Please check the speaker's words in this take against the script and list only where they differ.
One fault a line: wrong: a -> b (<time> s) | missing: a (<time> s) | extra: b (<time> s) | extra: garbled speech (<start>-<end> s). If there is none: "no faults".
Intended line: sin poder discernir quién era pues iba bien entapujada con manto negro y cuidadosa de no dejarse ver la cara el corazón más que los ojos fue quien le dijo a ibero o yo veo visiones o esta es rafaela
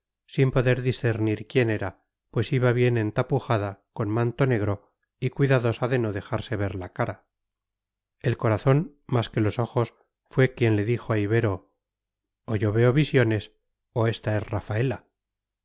no faults